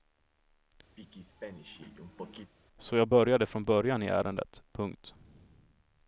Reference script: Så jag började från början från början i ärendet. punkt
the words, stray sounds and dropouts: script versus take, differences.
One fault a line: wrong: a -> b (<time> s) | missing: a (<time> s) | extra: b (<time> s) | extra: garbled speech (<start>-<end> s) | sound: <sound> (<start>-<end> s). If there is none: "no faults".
sound: throat clearing (1.0-2.5 s)
missing: från början (4.0 s)